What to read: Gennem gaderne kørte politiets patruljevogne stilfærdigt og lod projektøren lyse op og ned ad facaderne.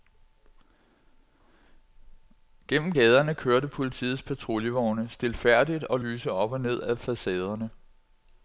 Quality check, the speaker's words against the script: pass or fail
fail